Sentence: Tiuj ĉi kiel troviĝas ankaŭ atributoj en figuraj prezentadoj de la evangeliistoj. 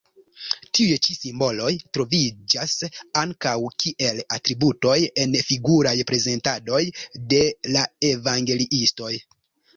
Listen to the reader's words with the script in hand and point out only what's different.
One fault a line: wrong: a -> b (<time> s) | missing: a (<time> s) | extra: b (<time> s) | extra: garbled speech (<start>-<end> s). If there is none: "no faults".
wrong: kiel -> simboloj (1.1 s)
extra: kiel (3.8 s)